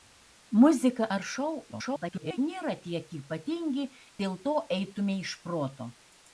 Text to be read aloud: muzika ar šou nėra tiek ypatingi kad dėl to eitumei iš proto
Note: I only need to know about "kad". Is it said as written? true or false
false